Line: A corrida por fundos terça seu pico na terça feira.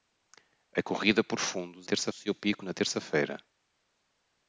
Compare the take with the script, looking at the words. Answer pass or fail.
pass